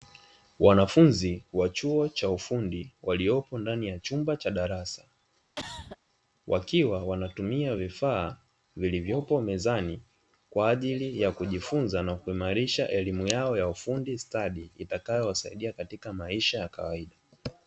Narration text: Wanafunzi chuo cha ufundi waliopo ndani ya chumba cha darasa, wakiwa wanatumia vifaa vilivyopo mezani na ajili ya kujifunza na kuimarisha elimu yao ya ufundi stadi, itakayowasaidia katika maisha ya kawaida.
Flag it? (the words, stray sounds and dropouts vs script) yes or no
yes